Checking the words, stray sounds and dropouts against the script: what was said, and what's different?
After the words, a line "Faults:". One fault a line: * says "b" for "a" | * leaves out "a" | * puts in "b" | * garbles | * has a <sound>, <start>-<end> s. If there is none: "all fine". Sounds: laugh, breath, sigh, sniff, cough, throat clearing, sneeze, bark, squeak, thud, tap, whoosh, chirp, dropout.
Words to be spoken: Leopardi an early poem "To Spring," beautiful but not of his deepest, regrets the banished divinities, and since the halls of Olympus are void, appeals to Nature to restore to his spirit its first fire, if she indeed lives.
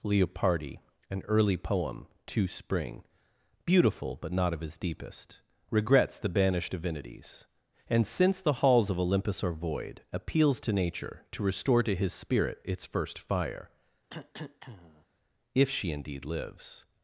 Leopardi an early poem "To Spring," beautiful but not of his deepest, regrets the banished divinities, and since the halls of Olympus are void, appeals to Nature to restore to his spirit its first fire, if she indeed lives.
Faults:
* has a cough, 14.1-15.1 s